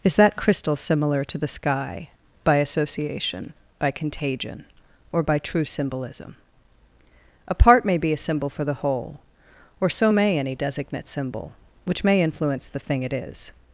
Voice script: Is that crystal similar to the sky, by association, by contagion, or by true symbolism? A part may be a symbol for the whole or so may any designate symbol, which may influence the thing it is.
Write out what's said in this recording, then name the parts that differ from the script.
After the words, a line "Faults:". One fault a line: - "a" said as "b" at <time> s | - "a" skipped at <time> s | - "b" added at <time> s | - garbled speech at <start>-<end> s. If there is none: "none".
Is that crystal similar to the sky, by association, by contagion, or by true symbolism? A part may be a symbol for the whole or so may any designate symbol, which may influence the thing it is.
Faults:
none